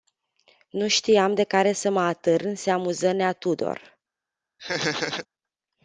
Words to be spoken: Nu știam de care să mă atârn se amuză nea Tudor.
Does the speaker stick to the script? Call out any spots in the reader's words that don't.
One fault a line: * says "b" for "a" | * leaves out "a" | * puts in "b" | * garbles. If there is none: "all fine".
all fine